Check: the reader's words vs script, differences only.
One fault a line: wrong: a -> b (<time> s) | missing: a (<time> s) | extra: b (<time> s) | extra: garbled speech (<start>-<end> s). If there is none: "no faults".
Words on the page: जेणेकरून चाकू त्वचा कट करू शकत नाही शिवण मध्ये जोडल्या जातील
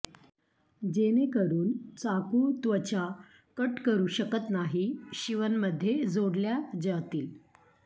no faults